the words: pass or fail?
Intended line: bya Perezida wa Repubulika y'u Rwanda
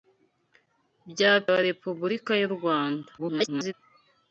fail